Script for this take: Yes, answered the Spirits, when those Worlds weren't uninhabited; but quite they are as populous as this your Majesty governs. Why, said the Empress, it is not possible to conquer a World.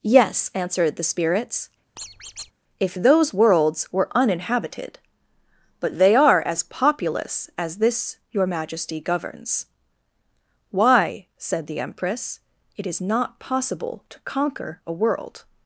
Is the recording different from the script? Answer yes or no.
yes